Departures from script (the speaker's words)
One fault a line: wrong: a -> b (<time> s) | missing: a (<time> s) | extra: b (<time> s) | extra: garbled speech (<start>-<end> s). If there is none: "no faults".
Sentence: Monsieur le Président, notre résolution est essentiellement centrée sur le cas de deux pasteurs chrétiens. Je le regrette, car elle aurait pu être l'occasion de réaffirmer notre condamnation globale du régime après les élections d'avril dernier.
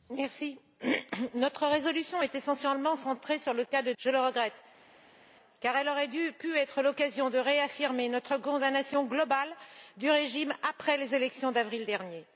missing: deux pasteurs chrétiens (3.9 s)